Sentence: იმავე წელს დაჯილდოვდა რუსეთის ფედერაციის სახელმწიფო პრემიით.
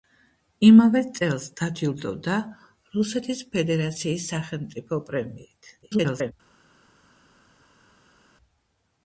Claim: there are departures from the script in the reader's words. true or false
true